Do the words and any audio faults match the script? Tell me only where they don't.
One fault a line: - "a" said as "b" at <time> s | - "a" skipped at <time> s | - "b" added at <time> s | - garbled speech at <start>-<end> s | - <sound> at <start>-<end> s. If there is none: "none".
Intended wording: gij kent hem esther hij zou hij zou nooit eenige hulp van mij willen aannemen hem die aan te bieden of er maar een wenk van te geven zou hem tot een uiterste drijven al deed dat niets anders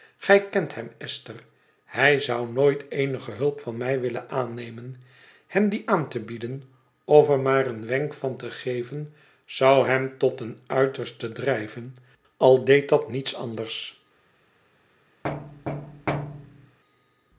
- "hij zou" skipped at 2.5 s
- thud at 15.2-16.8 s